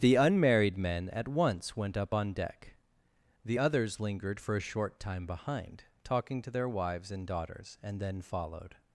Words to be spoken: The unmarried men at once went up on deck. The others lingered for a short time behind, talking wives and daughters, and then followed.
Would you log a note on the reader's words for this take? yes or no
yes